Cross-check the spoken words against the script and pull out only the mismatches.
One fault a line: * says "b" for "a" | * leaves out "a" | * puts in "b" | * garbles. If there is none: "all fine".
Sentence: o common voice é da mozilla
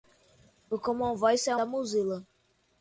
all fine